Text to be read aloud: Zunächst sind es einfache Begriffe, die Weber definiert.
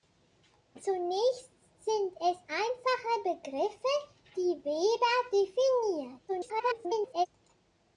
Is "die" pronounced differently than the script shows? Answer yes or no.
no